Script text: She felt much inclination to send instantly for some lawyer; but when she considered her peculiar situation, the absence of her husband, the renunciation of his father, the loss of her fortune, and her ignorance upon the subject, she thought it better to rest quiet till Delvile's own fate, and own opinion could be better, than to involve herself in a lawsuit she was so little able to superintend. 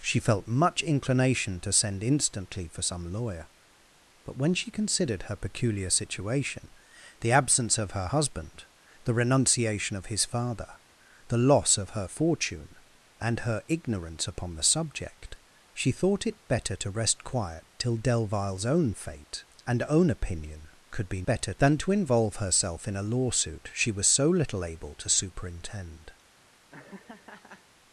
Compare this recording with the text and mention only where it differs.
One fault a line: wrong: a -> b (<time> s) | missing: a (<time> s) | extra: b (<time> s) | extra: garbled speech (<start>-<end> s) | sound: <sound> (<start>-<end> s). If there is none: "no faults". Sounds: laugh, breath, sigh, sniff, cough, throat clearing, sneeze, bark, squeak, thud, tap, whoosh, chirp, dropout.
sound: laugh (26.7-27.6 s)